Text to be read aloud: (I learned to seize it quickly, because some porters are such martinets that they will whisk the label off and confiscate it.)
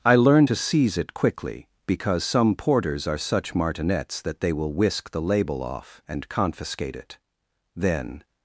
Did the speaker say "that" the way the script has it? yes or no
yes